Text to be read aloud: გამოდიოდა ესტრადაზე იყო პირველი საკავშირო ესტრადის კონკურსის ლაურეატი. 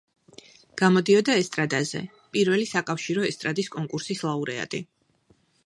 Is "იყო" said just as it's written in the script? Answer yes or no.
no